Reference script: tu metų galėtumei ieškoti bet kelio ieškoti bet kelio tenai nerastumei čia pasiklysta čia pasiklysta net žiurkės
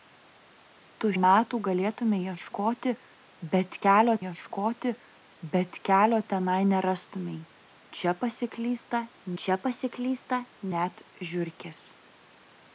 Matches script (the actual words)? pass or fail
pass